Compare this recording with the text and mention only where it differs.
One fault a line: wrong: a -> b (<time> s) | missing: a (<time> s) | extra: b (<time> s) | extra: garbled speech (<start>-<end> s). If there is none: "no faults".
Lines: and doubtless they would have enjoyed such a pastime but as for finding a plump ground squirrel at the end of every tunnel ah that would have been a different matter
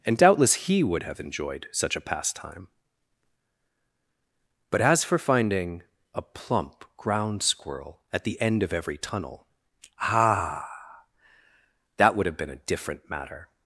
wrong: they -> he (0.5 s)